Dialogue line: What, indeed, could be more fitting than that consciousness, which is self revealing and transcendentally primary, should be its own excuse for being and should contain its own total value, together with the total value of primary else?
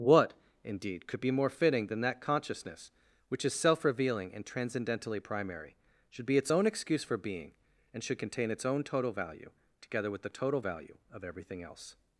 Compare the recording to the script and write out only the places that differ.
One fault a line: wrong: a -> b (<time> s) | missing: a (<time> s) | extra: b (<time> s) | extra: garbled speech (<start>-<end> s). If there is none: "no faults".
wrong: primary -> everything (11.2 s)